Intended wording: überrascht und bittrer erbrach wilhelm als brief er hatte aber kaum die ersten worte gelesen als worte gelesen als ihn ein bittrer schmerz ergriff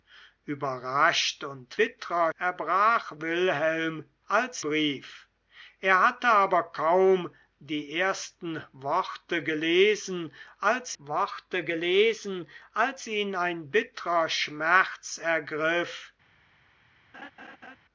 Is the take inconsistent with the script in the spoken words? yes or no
no